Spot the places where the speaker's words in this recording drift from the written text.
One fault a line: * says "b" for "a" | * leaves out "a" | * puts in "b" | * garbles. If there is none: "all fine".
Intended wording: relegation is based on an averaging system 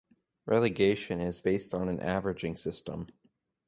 all fine